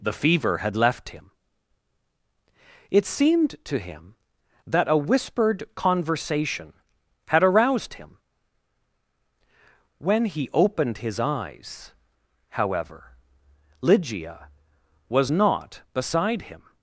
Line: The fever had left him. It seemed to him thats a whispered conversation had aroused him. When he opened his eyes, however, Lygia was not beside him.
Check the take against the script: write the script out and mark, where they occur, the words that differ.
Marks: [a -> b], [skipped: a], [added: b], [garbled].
The fever had left him. It seemed to him [thats -> that] a whispered conversation had aroused him. When he opened his eyes, however, Lygia was not beside him.